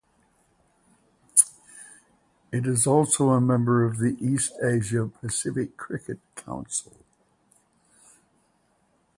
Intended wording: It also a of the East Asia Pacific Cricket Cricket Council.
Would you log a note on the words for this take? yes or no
yes